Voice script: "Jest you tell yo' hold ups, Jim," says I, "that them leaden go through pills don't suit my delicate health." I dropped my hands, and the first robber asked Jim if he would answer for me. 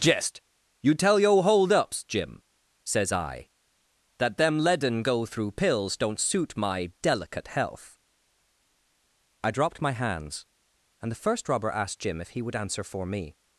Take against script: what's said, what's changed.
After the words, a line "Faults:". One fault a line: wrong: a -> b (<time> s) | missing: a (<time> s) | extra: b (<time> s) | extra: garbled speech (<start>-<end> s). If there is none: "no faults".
"Jest you tell yo' hold ups, Jim," says I, "that them leaden go through pills don't suit my delicate health." I dropped my hands, and the first robber asked Jim if he would answer for me.
Faults:
no faults